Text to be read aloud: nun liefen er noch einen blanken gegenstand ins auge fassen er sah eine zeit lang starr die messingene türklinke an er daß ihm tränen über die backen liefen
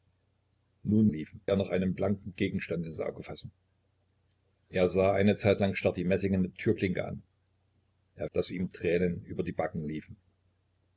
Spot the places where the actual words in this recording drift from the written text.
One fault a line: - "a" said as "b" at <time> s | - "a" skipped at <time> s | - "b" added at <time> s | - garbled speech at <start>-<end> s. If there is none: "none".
none